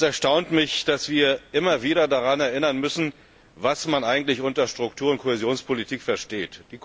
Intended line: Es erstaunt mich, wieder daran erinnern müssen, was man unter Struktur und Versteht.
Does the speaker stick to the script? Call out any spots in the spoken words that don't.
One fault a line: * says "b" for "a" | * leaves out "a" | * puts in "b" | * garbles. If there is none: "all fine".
* puts in "dass wir immer"
* puts in "eigentlich"
* puts in "Kohäsionspolitik"